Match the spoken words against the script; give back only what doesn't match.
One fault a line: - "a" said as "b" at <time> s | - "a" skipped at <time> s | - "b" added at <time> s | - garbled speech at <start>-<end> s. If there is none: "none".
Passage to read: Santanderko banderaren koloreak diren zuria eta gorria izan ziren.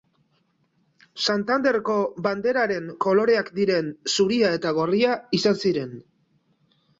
none